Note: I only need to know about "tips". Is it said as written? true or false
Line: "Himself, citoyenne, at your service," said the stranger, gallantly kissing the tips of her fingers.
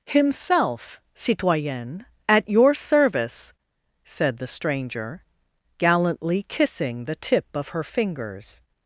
false